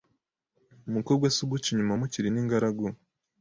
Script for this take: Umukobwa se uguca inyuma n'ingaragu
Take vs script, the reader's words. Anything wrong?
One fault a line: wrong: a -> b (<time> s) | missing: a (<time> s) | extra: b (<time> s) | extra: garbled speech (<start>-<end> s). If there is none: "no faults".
extra: mukiri (2.0 s)